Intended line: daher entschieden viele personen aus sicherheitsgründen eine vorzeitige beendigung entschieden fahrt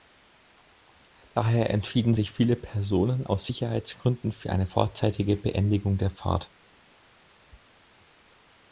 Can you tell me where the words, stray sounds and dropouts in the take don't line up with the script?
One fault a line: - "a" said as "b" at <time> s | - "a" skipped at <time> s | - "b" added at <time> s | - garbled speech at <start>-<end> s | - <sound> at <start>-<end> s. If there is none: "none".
- "sich" added at 2.1 s
- "für" added at 4.3 s
- "entschieden" said as "der" at 6.0 s